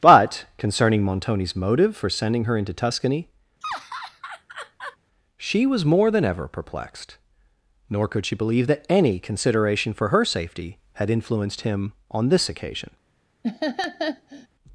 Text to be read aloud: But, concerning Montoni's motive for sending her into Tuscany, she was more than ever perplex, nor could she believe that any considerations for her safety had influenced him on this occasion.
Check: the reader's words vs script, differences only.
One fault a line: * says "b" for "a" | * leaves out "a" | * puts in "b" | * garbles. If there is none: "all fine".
* says "perplexed" for "perplex"
* says "consideration" for "considerations"